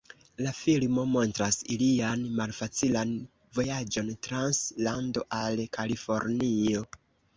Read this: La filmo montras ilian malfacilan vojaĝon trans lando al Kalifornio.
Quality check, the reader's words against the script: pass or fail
pass